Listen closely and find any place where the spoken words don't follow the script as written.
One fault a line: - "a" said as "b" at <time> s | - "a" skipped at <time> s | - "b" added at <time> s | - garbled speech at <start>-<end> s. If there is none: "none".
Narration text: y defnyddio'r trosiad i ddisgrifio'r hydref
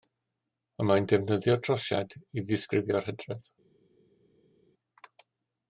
- "mae'n" added at 0.9 s